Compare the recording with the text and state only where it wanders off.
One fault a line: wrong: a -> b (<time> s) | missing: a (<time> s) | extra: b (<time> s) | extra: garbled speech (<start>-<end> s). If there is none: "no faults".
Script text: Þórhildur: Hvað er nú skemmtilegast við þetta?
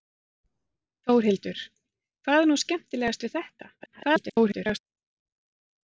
extra: garbled speech (3.8-4.8 s)